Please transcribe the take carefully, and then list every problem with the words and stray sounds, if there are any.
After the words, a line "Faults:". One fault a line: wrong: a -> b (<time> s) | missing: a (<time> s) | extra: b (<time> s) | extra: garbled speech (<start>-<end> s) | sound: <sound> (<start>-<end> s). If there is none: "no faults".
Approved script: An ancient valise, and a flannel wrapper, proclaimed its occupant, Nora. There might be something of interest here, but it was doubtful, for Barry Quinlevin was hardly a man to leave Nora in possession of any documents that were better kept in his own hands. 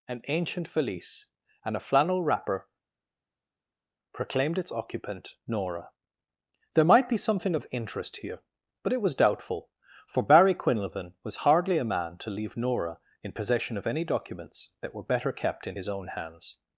An ancient valise, and a flannel wrapper, proclaimed its occupant, Nora. There might be something of interest here, but it was doubtful, for Barry Quinlevin was hardly a man to leave Nora in possession of any documents that were better kept in his own hands.
Faults:
no faults